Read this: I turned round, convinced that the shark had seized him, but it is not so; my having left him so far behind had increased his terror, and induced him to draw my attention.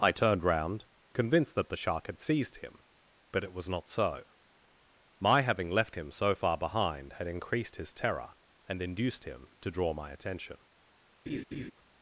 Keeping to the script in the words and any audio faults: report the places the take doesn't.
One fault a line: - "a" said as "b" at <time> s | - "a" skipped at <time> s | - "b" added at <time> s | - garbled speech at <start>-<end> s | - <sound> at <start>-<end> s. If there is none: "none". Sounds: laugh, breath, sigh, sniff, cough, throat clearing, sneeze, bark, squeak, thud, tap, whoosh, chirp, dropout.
- "is" said as "was" at 3.5 s
- laugh at 11.3-11.7 s